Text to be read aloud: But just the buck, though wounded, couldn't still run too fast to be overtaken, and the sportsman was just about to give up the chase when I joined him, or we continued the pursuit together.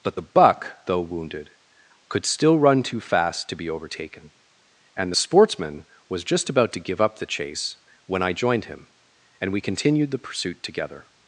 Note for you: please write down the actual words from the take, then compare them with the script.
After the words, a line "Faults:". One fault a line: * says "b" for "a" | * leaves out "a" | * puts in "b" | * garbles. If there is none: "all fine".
But the buck, though wounded, could still run too fast to be overtaken, and the sportsman was just about to give up the chase when I joined him, and we continued the pursuit together.
Faults:
* leaves out "just"
* says "could" for "couldn't"
* says "and" for "or"